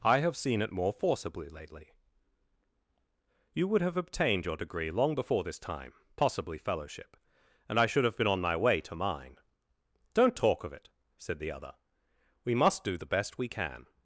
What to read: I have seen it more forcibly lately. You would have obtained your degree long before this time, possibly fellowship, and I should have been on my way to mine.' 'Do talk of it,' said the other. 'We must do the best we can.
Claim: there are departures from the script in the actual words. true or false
true